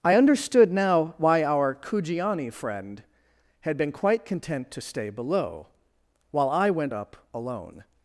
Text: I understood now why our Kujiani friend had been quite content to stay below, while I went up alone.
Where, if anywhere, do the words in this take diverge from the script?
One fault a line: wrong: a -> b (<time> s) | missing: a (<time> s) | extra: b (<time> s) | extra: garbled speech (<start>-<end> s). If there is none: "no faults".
no faults